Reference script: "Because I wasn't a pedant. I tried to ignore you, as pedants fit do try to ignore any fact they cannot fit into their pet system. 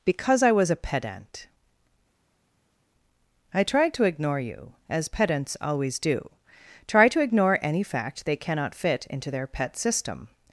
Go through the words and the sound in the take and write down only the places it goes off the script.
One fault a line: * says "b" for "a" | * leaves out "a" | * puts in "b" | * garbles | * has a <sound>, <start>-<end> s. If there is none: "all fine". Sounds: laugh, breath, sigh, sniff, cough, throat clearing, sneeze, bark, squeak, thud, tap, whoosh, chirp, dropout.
* says "was" for "wasn't"
* says "always" for "fit"